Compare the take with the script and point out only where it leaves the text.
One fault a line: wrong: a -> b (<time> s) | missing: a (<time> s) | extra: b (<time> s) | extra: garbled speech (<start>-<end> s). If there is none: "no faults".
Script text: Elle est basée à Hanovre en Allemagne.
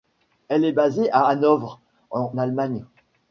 no faults